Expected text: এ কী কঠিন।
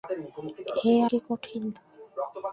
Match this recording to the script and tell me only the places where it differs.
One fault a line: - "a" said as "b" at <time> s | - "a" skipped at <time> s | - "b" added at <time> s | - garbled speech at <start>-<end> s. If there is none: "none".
none